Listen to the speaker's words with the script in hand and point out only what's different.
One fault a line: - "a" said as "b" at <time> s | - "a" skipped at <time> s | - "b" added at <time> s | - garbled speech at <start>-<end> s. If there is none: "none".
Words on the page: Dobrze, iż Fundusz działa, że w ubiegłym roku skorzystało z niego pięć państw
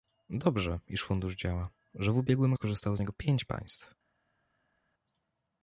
- "roku" skipped at 2.5 s